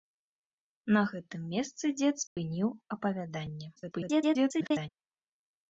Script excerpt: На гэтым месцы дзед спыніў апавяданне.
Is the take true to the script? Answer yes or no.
no